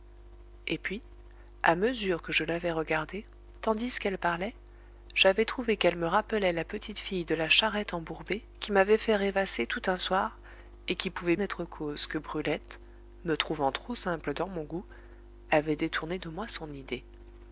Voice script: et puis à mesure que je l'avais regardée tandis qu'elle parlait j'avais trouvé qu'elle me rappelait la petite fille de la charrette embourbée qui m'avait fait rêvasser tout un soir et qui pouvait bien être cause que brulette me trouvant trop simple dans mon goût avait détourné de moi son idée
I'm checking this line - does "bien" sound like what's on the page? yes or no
no